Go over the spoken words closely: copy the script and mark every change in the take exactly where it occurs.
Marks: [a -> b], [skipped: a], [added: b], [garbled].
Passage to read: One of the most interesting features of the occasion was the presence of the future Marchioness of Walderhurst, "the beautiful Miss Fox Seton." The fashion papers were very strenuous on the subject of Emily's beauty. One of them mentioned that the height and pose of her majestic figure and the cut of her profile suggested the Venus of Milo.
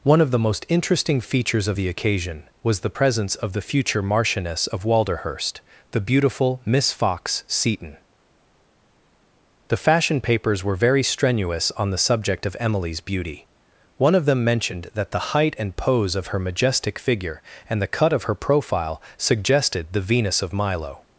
One of the most interesting features of the occasion was the presence of the future Marchioness of Walderhurst, "the beautiful Miss Fox Seton." The fashion papers were very strenuous on the subject of Emily's beauty. One of them mentioned that the height and pose of her majestic figure and the cut of her profile suggested the Venus of Milo.